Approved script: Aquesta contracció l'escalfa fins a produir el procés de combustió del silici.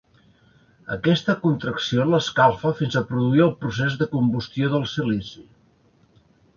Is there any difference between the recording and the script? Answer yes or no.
no